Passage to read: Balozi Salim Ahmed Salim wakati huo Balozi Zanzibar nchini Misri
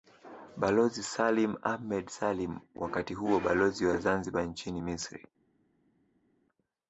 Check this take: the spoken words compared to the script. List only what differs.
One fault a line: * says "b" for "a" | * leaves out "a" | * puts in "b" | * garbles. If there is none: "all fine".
* puts in "wa"